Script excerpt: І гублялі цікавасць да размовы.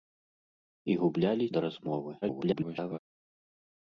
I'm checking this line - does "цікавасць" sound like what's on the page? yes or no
no